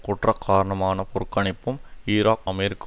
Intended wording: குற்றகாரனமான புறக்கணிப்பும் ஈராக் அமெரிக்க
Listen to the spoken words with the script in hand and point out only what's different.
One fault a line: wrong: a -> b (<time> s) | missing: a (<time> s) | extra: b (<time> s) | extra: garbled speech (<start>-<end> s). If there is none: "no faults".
no faults